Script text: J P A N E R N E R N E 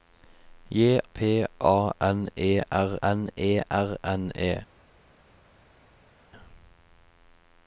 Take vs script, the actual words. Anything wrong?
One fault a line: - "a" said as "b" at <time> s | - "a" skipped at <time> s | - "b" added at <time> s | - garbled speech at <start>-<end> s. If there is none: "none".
none